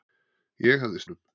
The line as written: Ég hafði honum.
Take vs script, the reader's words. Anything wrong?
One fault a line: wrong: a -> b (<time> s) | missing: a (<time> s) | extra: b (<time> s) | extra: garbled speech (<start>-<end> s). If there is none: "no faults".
no faults